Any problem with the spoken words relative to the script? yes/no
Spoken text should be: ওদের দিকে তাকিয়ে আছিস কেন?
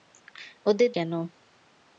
yes